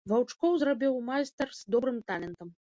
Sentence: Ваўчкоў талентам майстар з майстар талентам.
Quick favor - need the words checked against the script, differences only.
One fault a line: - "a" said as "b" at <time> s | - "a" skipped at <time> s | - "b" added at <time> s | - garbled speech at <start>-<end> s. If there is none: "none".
- "талентам" said as "зрабіў" at 0.6 s
- "майстар" said as "добрым" at 1.7 s